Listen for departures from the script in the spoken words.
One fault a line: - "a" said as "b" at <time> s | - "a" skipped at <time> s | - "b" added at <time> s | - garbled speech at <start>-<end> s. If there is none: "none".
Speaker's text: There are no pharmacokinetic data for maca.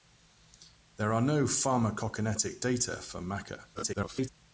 - garbled speech at 3.7-4.3 s